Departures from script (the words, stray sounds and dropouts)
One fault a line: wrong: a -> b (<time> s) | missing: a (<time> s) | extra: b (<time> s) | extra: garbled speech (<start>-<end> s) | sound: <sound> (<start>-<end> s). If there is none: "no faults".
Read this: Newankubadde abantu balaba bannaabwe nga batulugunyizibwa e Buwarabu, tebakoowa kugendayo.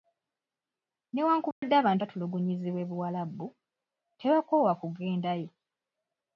sound: dropout (1.5-1.6 s)
missing: balaba bannaabwe nga (2.0 s)